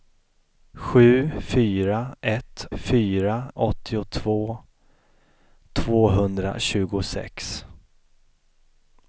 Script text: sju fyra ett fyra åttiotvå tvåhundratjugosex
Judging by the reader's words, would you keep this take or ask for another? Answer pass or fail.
pass